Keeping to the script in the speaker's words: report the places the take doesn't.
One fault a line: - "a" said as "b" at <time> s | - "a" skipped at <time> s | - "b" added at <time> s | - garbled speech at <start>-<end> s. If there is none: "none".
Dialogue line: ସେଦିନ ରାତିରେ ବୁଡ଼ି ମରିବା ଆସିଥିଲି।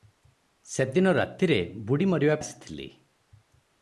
none